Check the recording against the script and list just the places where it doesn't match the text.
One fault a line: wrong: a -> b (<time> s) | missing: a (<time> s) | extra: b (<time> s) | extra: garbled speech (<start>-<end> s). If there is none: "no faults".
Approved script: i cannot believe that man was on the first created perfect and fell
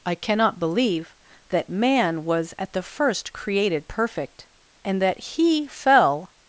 wrong: on -> at (2.6 s)
extra: that he (5.0 s)